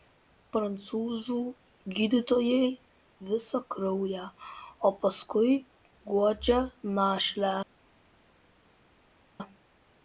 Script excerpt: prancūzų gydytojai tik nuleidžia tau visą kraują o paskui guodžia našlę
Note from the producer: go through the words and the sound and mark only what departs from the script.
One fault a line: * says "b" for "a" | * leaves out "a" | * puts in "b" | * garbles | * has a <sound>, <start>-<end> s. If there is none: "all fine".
* leaves out "tik nuleidžia tau"